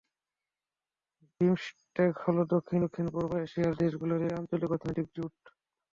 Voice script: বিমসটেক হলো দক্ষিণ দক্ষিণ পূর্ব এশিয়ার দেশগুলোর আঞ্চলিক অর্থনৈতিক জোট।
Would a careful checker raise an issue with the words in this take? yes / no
no